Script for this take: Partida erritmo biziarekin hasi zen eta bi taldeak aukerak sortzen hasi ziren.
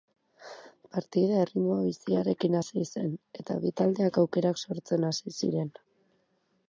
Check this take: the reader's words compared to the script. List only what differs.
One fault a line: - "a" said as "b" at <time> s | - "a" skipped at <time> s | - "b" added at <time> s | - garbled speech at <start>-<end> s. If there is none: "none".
none